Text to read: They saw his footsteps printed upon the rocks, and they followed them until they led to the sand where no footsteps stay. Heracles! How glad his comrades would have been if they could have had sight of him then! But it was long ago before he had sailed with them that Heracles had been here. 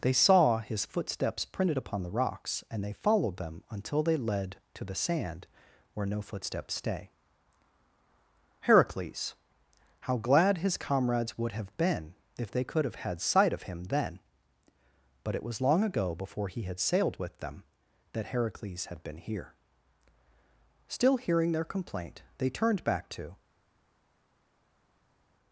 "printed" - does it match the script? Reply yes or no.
yes